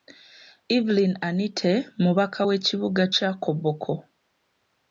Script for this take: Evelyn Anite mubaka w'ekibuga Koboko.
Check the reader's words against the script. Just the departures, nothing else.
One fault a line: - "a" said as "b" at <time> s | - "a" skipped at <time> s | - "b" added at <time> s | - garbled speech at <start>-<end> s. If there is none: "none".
- "kya" added at 3.1 s